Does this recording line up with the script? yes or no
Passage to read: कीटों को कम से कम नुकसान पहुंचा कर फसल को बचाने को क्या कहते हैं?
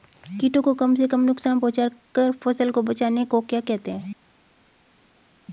yes